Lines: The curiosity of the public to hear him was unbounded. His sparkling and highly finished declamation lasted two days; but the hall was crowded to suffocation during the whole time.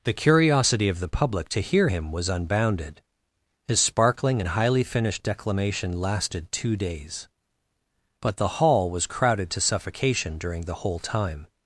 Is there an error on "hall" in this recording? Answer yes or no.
no